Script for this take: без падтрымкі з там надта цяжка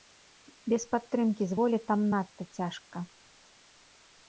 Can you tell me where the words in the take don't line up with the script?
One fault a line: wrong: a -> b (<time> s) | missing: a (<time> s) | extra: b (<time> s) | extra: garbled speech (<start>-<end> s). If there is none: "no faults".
extra: волі (1.6 s)